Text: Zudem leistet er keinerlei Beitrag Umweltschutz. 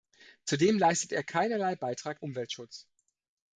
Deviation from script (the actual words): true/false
false